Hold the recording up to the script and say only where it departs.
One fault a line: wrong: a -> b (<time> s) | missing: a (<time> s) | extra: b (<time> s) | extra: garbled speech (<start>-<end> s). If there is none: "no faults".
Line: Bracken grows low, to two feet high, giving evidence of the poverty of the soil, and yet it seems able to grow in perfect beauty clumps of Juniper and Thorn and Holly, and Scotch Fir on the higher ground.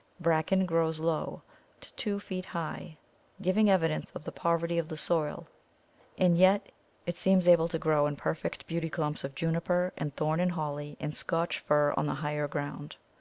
no faults